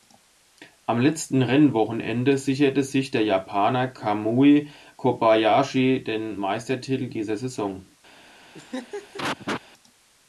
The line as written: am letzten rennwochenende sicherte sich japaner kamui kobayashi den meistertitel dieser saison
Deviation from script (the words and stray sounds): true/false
true